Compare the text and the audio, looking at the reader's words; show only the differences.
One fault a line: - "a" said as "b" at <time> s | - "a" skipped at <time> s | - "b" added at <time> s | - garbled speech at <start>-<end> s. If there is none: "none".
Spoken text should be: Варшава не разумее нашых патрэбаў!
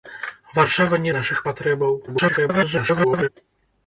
- "разумее" skipped at 1.1 s
- garbled speech at 2.1-3.3 s